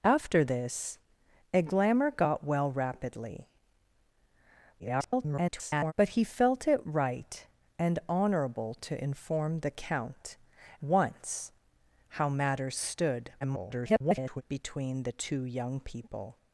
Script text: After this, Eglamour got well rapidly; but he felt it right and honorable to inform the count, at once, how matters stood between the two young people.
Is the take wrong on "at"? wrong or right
wrong